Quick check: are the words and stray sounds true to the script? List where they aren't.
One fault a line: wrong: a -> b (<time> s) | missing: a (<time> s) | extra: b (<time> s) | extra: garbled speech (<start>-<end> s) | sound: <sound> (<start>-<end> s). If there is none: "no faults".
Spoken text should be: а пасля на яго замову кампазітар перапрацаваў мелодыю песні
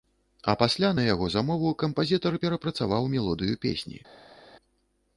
no faults